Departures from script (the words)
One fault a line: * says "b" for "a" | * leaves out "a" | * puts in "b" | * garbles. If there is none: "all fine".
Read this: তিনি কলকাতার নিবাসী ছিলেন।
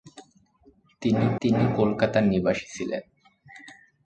* puts in "তিনি"